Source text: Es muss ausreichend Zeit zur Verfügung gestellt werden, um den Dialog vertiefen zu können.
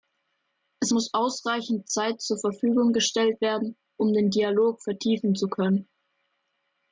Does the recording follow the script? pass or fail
pass